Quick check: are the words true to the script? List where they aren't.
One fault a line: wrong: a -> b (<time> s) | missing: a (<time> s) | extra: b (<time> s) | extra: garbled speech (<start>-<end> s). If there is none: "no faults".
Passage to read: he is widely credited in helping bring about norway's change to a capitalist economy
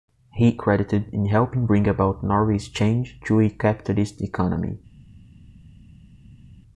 missing: is widely (0.6 s)